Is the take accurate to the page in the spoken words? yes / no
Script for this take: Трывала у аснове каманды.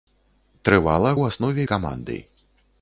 yes